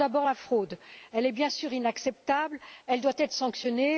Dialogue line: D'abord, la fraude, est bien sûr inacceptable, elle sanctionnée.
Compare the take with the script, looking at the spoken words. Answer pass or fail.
fail